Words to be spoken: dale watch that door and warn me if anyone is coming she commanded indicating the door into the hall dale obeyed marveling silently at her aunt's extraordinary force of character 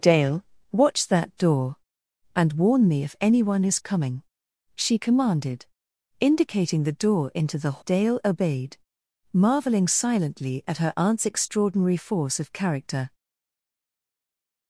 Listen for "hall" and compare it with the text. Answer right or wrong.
wrong